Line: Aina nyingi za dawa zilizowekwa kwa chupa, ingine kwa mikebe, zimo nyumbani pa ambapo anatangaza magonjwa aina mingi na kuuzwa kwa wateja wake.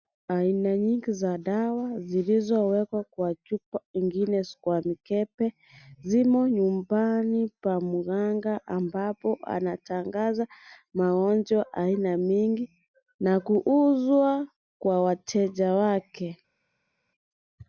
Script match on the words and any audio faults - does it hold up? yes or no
no